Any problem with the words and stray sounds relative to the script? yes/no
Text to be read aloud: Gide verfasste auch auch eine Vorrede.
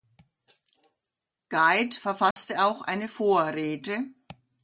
yes